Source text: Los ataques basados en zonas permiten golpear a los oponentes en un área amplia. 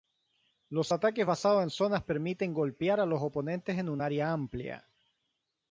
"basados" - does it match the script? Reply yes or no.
yes